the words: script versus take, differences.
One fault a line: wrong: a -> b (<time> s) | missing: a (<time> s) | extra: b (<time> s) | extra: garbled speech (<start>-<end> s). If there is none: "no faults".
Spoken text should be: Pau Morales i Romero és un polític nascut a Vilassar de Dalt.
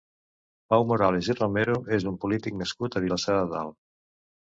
no faults